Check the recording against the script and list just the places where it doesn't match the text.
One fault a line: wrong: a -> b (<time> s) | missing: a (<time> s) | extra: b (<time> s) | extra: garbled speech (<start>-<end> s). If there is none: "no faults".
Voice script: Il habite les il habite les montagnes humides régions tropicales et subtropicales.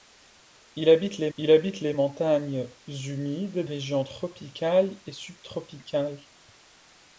no faults